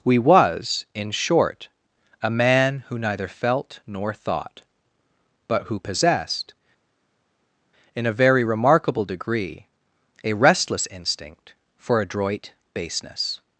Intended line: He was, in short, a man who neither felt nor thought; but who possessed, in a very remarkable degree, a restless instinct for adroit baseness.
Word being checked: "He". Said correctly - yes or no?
no